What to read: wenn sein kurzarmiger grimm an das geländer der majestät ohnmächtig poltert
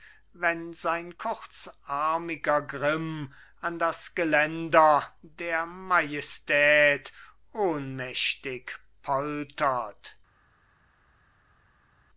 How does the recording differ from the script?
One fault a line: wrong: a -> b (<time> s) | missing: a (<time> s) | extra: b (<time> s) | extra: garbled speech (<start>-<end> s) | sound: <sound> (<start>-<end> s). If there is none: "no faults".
no faults